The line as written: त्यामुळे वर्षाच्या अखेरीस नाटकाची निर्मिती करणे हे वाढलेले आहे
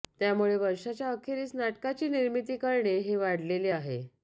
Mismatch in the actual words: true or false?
false